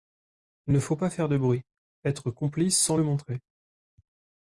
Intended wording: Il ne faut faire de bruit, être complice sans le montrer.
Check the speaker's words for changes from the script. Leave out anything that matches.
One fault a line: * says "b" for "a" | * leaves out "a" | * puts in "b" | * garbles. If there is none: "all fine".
* puts in "pas"